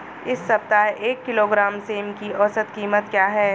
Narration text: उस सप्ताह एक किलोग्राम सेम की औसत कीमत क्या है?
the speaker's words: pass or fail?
fail